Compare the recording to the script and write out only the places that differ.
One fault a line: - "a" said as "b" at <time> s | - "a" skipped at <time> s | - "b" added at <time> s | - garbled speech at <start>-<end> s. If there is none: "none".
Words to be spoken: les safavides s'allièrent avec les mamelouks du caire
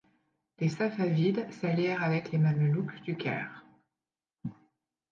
none